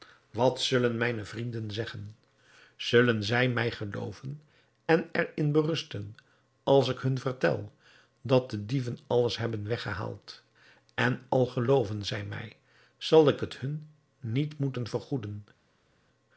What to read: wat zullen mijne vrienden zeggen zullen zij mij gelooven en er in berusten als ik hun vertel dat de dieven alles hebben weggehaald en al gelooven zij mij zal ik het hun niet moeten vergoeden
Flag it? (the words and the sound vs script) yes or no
no